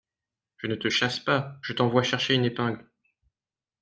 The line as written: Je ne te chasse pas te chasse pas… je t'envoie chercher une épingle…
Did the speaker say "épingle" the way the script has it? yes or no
yes